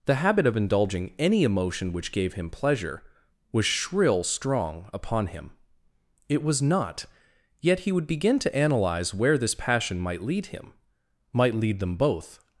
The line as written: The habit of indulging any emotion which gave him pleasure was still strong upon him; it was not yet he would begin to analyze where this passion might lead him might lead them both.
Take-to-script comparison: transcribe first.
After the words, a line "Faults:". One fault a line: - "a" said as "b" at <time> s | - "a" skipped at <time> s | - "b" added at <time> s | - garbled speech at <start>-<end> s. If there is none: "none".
The habit of indulging any emotion which gave him pleasure was shrill strong upon him; it was not yet he would begin to analyze where this passion might lead him might lead them both.
Faults:
- "still" said as "shrill" at 3.6 s